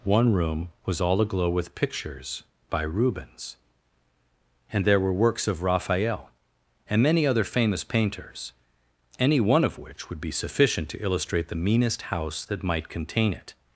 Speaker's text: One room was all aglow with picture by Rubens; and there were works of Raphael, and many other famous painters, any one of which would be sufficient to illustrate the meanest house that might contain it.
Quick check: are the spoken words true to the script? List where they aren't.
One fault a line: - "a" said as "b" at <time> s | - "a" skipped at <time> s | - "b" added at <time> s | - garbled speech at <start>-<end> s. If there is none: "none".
- "picture" said as "pictures" at 1.8 s